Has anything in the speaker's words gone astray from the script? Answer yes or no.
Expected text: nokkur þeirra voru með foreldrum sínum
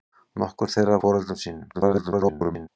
yes